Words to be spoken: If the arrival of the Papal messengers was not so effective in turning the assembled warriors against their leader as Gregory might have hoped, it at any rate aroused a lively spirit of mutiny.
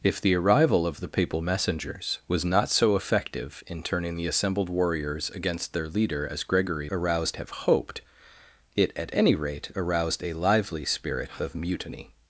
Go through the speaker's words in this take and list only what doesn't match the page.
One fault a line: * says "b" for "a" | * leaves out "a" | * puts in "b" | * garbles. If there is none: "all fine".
* says "aroused" for "might"